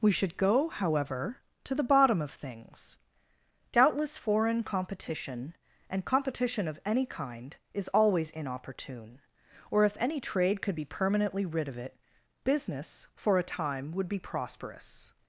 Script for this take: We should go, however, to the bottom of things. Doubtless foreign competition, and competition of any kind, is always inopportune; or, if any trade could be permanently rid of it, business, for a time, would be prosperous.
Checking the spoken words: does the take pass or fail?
pass